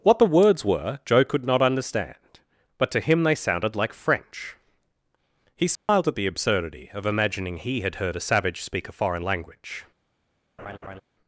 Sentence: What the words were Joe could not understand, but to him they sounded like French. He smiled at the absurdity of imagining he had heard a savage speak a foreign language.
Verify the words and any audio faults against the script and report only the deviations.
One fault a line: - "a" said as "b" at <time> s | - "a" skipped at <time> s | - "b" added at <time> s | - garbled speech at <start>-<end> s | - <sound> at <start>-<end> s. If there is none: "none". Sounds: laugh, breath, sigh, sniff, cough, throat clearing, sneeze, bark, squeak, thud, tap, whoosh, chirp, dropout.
- dropout at 5.8-5.9 s
- laugh at 10.6-11.0 s